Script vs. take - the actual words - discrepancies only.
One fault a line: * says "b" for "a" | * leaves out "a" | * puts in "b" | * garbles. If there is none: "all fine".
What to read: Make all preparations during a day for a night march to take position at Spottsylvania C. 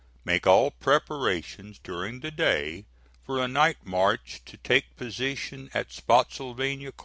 * says "the" for "a"